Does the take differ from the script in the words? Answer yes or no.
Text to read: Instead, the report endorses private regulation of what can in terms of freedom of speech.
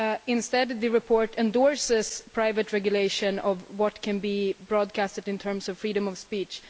yes